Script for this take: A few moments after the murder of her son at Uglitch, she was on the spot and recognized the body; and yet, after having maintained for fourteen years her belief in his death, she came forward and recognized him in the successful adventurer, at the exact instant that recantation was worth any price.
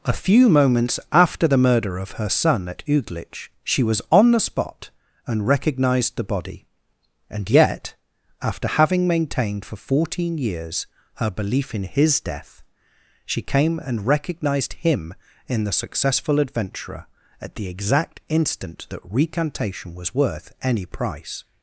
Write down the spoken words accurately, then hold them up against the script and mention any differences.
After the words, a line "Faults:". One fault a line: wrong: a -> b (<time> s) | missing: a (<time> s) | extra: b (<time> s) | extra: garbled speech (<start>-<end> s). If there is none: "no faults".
A few moments after the murder of her son at Uglitch, she was on the spot and recognized the body; and yet, after having maintained for fourteen years her belief in his death, she came and recognized him in the successful adventurer, at the exact instant that recantation was worth any price.
Faults:
missing: forward (13.8 s)